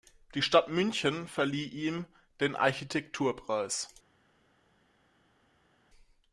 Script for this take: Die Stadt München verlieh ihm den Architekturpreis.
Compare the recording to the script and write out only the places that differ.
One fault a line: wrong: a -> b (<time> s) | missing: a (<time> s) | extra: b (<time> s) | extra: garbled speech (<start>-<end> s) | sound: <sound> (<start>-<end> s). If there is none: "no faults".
no faults